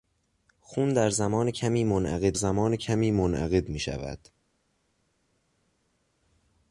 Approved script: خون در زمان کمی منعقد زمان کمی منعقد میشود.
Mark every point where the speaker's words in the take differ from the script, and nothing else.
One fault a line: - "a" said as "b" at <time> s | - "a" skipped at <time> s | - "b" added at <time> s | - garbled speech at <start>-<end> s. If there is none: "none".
none